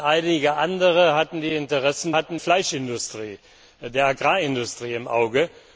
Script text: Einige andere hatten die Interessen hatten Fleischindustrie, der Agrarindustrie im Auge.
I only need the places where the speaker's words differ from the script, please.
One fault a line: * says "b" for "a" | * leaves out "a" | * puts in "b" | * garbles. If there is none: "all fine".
all fine